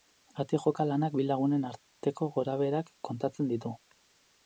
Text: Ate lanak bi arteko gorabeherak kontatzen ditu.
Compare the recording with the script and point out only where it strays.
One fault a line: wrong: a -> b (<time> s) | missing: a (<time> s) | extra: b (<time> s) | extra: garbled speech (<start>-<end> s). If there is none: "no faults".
extra: joka (0.6 s)
extra: lagunen (1.3 s)